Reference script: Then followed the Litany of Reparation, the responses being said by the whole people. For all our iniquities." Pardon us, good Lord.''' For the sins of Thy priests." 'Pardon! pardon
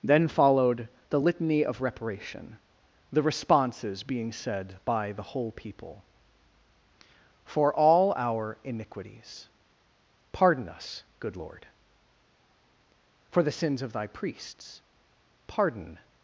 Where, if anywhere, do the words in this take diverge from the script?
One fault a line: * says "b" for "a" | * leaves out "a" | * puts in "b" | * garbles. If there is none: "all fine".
* leaves out "pardon"